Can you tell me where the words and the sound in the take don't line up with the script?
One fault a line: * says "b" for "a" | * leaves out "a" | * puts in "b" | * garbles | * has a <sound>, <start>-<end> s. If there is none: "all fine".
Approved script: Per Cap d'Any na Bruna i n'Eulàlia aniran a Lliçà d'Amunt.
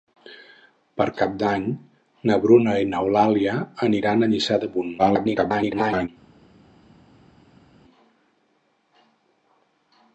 * garbles